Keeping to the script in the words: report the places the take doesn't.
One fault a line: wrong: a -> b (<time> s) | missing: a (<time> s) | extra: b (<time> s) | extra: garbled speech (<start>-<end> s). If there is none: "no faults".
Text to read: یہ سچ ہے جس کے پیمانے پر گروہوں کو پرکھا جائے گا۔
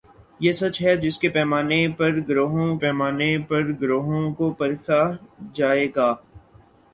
extra: پیمانے پر گروہوں (2.8 s)